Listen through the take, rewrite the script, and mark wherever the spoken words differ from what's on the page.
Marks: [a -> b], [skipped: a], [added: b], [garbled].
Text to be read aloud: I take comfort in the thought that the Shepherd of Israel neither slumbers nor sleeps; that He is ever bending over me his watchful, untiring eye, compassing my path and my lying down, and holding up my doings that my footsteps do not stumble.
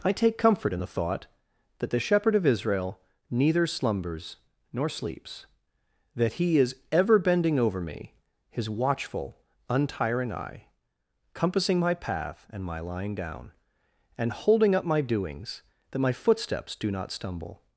I take comfort in the thought that the Shepherd of Israel neither slumbers nor sleeps; that He is ever bending over me his watchful, untiring eye, compassing my path and my lying down, and holding up my doings that my footsteps do not stumble.